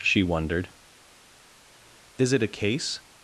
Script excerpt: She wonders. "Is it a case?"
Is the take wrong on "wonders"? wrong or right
wrong